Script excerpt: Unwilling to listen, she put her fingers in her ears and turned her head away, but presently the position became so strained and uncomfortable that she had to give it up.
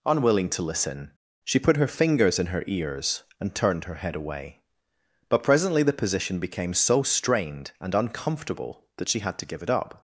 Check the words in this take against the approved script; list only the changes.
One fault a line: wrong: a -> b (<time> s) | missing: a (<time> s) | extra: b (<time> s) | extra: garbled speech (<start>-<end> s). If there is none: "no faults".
no faults